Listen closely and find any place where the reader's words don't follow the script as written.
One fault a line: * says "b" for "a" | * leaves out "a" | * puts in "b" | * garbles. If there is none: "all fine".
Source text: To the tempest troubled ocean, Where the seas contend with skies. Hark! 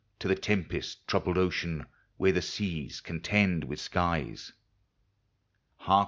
all fine